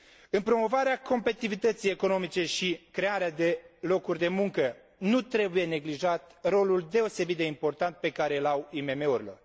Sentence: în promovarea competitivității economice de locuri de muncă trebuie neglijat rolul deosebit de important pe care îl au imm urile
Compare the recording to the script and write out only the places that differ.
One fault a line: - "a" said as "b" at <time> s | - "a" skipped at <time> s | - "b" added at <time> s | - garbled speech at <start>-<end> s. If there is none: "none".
- "și crearea" added at 2.5 s
- "nu" added at 5.0 s